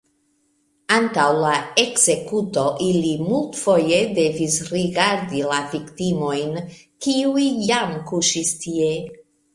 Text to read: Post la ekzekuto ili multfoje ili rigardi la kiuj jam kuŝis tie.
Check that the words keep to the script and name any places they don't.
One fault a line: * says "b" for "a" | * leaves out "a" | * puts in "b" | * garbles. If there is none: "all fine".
* says "Antaŭ" for "Post"
* says "devis" for "ili"
* puts in "viktimojn"